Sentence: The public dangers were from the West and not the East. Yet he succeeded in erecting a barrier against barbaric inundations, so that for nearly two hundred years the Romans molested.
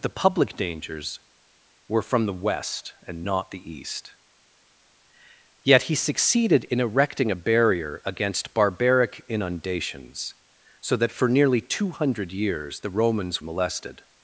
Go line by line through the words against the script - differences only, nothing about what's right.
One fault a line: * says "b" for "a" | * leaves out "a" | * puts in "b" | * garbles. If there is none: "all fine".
all fine